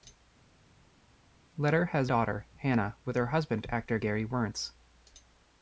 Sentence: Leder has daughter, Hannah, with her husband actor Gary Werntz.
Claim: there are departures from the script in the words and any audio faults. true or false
false